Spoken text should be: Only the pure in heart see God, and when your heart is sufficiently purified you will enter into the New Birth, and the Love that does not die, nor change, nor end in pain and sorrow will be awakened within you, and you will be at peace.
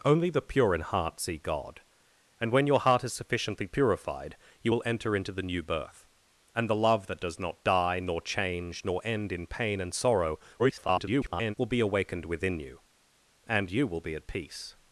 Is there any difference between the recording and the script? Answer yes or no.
yes